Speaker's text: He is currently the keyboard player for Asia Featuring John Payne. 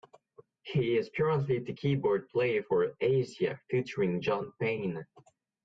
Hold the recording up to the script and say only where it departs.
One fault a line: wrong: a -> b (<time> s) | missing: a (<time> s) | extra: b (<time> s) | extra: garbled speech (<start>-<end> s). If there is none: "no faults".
no faults